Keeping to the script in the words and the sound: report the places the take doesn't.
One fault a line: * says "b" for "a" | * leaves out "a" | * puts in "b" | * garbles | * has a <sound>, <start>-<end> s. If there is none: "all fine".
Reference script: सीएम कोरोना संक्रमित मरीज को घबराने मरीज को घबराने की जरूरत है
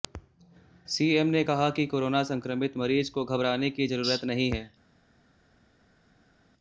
* says "ने कहा कि कोरोना संक्रमित" for "कोरोना संक्रमित मरीज को घबराने"
* puts in "नहीं"